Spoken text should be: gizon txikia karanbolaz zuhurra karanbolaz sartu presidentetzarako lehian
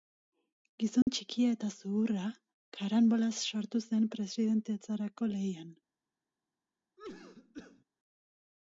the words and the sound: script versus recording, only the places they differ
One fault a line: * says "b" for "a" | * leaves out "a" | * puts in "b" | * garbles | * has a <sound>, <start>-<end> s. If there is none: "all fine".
* has a dropout, 1.0-1.1 s
* says "eta" for "karanbolaz"
* puts in "zen"
* has a cough, 7.0-7.8 s